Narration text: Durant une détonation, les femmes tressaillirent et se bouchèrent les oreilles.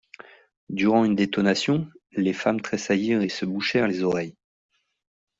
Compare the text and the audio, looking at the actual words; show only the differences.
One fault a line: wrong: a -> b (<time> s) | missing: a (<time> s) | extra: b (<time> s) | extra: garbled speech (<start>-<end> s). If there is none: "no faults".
no faults